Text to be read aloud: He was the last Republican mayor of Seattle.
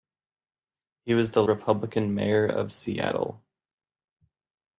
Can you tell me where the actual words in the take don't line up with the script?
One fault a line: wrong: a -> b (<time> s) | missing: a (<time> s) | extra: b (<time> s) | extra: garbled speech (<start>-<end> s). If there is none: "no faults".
missing: last (1.4 s)